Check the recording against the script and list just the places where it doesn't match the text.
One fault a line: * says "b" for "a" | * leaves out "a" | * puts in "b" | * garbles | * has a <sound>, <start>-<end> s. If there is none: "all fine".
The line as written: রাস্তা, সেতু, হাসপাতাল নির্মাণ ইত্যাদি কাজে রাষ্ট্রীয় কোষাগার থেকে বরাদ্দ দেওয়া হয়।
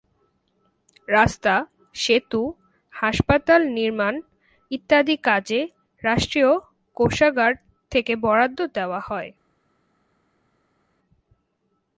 all fine